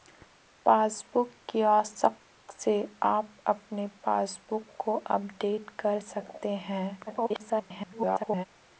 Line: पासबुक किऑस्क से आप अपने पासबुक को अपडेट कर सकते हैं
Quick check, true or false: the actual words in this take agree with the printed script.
false